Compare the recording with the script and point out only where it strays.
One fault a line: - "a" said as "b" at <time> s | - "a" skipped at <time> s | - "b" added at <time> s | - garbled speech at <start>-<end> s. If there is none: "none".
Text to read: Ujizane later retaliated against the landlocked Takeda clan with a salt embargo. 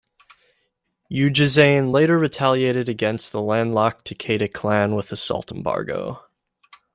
none